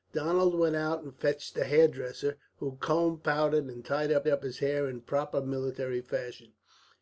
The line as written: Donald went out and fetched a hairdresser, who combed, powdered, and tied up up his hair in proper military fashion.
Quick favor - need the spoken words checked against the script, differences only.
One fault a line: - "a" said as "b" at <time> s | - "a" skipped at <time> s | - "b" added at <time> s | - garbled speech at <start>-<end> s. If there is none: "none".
none